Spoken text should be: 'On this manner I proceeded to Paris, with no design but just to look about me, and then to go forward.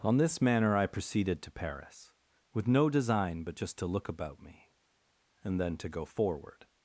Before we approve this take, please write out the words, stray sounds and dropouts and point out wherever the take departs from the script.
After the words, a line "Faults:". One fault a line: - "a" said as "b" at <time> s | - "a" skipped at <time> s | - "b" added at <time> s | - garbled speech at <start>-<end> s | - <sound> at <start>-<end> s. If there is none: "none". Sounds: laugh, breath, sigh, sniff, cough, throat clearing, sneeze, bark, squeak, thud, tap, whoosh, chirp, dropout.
'On this manner I proceeded to Paris, with no design but just to look about me, and then to go forward.
Faults:
none